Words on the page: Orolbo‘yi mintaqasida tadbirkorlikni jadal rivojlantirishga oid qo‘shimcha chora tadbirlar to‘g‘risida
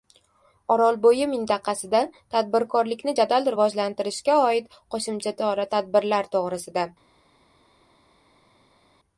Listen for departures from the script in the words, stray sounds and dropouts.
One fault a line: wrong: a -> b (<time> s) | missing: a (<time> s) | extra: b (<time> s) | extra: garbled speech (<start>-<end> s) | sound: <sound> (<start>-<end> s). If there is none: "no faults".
no faults